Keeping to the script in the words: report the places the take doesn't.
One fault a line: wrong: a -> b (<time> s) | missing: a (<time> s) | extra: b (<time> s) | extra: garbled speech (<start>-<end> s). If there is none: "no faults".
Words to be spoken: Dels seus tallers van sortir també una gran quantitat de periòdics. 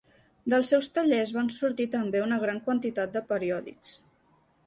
no faults